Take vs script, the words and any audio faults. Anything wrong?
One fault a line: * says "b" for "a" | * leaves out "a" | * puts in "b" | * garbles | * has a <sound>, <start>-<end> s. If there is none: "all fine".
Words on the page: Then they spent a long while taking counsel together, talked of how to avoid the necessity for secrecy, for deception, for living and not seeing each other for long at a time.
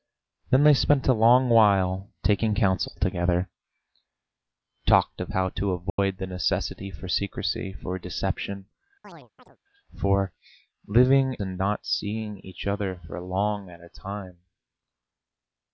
* has a dropout, 5.9-6.0 s
* has a chirp, 9.0-9.6 s